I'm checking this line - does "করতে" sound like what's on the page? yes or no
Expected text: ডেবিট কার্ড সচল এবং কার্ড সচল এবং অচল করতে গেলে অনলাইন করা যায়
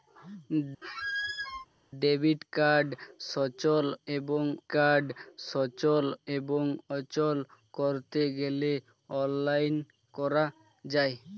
yes